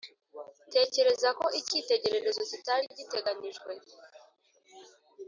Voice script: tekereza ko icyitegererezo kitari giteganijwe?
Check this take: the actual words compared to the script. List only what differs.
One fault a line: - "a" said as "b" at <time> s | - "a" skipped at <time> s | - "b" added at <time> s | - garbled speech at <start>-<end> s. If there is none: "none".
none